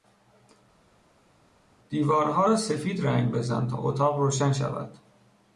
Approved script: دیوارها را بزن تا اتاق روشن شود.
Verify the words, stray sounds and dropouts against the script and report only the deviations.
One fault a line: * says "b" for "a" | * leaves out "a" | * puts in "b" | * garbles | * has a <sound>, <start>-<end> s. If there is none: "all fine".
* puts in "سفید رنگ"